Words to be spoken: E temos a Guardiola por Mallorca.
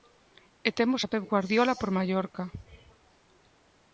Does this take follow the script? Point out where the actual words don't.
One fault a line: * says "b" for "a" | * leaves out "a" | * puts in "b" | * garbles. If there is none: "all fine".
* puts in "Pep"